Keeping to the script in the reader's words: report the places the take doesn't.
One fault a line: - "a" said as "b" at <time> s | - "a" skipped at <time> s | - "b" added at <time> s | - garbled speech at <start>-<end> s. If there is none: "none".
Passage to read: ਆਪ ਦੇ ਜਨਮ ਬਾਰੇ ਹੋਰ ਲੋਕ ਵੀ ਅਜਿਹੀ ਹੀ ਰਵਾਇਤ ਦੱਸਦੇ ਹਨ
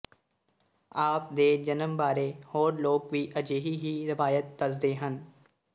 none